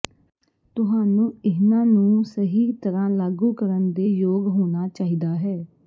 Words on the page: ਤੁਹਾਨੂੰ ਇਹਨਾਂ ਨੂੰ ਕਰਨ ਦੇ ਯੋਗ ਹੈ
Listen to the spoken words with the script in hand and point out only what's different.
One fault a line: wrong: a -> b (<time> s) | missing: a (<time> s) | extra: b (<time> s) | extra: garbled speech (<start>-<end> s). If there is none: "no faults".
extra: ਸਹੀ ਤਰ੍ਹਾਂ ਲਾਗੂ (2.2 s)
extra: ਹੋਣਾ ਚਾਹੀਦਾ (4.5 s)